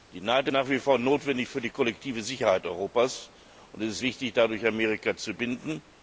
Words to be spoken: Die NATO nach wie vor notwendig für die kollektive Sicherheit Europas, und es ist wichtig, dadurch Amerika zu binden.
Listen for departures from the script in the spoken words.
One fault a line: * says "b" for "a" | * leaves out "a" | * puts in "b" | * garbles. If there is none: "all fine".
all fine